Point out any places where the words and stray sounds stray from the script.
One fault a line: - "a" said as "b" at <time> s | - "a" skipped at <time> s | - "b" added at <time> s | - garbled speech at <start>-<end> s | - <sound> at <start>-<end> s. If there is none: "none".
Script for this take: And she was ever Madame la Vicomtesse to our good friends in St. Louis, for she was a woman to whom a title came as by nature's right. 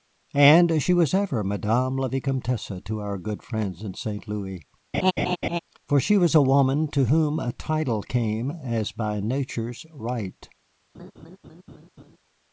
- laugh at 4.9-5.6 s
- laugh at 10.9-12.2 s